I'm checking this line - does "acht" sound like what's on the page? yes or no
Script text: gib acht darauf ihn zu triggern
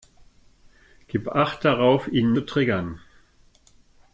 yes